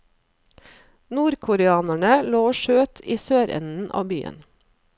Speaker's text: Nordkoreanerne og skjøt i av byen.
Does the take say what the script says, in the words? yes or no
no